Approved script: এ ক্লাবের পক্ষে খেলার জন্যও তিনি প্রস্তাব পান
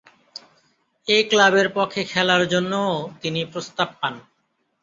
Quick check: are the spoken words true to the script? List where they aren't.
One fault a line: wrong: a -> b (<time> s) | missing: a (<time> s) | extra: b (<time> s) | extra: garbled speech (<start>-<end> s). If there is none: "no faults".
no faults